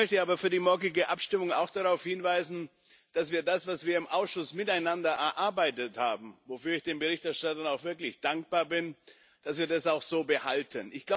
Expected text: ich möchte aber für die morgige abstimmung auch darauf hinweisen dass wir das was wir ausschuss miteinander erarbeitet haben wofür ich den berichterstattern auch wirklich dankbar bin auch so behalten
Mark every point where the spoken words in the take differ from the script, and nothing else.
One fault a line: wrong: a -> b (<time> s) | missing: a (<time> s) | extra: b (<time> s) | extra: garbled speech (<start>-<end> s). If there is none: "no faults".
extra: im (4.0 s)